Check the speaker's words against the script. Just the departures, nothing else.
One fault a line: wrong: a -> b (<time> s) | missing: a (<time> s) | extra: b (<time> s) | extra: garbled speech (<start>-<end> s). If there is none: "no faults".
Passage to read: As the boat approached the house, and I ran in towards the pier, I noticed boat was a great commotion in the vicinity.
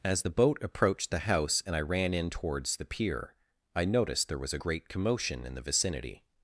wrong: boat -> there (4.3 s)